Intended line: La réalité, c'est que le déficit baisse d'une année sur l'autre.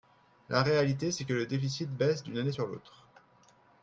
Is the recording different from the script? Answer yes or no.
no